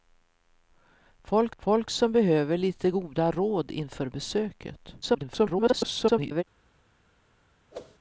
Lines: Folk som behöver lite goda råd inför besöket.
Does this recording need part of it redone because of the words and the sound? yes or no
yes